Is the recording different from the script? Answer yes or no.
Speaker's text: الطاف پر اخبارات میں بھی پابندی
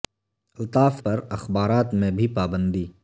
no